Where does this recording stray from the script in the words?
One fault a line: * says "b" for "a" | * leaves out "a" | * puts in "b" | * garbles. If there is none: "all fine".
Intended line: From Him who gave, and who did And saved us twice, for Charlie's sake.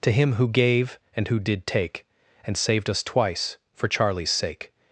* says "To" for "From"
* puts in "take"